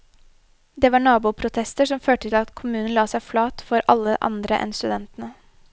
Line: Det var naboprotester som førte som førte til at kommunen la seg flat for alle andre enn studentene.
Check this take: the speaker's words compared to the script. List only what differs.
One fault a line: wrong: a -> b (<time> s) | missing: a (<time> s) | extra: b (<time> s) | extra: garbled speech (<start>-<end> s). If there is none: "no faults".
missing: som førte (2.3 s)